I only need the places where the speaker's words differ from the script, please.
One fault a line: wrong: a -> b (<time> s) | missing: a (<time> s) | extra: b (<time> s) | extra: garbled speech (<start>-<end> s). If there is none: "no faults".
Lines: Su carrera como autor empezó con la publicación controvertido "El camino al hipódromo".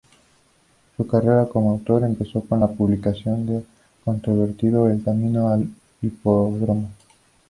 extra: del (3.5 s)